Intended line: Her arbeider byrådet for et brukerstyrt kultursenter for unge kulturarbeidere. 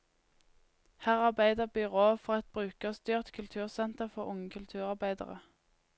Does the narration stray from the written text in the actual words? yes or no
no